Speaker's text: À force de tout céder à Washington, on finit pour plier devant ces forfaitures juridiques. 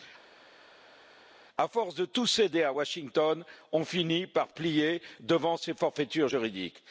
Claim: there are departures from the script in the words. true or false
true